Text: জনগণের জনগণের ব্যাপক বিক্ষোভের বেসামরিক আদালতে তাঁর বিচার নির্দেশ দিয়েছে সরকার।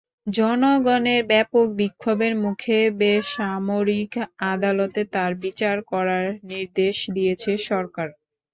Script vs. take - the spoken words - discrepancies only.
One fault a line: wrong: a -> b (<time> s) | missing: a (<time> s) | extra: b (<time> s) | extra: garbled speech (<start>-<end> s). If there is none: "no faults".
missing: জনগণের (1.2 s)
extra: মুখে (2.4 s)
extra: করার (5.9 s)